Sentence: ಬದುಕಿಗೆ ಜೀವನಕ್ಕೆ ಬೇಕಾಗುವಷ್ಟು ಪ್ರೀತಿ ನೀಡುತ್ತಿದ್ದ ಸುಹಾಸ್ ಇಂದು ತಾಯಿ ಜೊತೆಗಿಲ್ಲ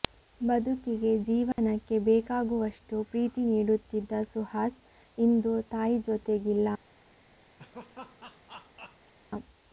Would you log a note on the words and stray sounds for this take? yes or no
yes